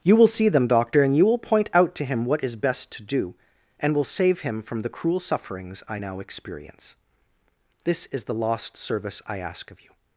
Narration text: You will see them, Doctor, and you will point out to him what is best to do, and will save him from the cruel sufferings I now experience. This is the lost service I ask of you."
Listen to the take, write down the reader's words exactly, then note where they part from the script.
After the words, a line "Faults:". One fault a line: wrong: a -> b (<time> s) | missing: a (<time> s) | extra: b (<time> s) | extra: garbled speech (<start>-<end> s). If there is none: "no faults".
You will see them, Doctor, and you will point out to him what is best to do, and will save him from the cruel sufferings I now experience. This is the lost service I ask of you."
Faults:
no faults